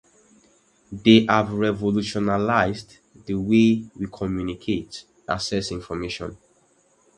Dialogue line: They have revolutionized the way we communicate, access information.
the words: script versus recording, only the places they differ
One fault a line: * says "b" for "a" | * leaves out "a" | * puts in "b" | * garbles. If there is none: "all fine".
all fine